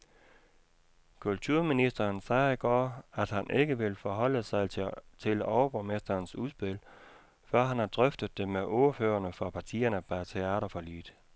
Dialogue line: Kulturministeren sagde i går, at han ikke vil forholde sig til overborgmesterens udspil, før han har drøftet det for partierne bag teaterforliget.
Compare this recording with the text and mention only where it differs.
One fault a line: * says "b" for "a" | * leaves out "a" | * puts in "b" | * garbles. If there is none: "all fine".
* puts in "med ordførerne"